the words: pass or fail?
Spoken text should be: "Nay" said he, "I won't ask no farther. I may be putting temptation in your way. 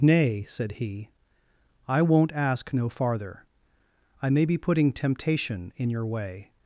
pass